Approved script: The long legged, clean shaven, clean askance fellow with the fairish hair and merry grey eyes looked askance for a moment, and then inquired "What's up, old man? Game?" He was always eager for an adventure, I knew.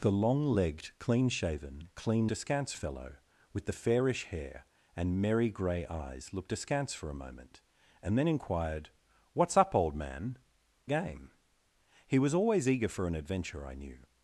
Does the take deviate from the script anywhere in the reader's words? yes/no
no